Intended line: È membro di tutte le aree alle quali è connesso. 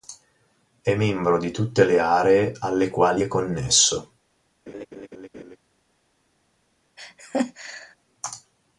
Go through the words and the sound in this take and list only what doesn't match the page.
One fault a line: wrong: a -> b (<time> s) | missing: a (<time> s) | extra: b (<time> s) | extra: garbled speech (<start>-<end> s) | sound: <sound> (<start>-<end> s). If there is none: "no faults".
sound: laugh (4.7-5.6 s)
sound: laugh (7.0-8.0 s)